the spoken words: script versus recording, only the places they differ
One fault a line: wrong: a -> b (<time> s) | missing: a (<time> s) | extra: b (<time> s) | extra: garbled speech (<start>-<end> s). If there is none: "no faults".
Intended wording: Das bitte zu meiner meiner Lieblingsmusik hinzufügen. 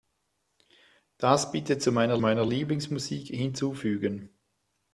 no faults